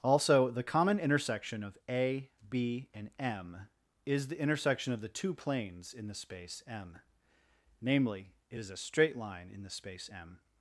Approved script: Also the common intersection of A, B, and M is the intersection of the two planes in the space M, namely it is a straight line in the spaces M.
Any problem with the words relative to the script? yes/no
yes